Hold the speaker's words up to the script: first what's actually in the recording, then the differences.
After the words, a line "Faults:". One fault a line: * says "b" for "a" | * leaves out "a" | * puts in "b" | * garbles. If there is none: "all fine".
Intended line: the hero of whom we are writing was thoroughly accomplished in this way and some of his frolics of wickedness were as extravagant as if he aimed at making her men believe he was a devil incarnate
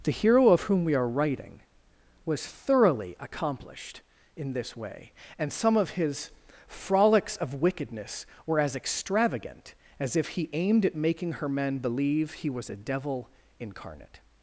the hero of whom we are writing was thoroughly accomplished in this way and some of his frolics of wickedness were as extravagant as if he aimed at making her men believe he was a devil incarnate
Faults:
all fine